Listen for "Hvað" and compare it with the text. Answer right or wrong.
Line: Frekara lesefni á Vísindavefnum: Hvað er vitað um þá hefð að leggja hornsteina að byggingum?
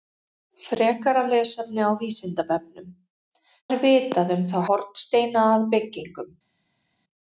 wrong